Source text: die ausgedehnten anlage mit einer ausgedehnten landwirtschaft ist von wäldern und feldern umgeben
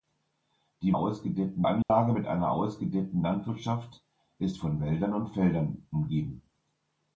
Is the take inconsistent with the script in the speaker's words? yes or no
no